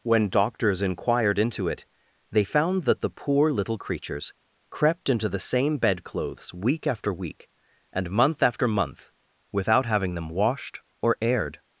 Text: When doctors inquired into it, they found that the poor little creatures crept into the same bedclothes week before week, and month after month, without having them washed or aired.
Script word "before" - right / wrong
wrong